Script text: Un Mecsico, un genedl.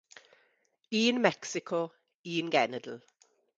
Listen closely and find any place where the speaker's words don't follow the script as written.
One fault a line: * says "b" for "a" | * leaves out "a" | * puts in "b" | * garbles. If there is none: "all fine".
all fine